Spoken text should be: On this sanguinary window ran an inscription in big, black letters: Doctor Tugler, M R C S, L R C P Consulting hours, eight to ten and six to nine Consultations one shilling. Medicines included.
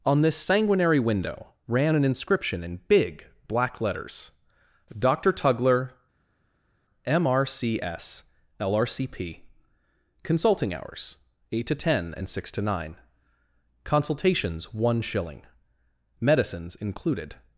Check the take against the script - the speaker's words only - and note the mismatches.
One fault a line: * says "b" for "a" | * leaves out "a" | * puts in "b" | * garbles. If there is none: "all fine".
all fine